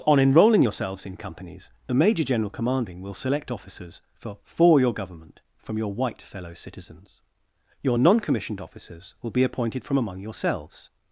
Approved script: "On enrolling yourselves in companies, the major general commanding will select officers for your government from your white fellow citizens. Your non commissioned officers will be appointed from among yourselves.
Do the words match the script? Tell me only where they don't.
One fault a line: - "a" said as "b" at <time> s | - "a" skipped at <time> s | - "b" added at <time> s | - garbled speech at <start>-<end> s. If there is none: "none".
- "for" added at 4.5 s